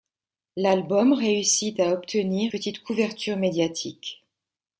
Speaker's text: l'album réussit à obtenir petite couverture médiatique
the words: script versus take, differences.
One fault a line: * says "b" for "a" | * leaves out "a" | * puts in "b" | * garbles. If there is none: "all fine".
all fine